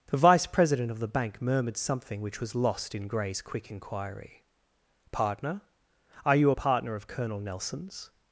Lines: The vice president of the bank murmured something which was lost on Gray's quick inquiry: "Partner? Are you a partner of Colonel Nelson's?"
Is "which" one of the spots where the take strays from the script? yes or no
no